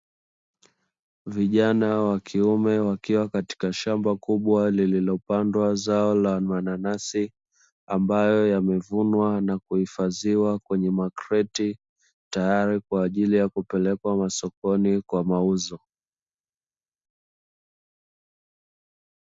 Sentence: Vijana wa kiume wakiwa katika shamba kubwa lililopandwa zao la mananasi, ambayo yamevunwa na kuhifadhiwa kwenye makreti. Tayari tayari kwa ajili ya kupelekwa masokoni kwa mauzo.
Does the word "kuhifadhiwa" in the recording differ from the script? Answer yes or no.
no